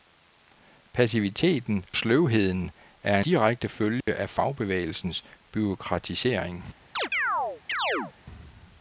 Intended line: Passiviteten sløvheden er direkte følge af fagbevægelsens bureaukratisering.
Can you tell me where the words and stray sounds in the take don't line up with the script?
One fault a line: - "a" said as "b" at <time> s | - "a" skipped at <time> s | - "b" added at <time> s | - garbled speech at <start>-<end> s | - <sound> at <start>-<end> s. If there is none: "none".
- dropout at 4.0-4.1 s
- chirp at 7.0-8.1 s